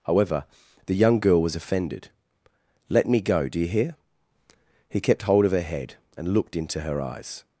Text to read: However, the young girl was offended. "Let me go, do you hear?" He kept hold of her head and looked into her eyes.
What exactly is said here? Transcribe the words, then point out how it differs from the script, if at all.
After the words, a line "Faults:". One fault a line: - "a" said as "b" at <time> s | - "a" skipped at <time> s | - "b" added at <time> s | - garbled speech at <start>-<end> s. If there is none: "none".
However, the young girl was offended. "Let me go, do you hear?" He kept hold of her head and looked into her eyes.
Faults:
none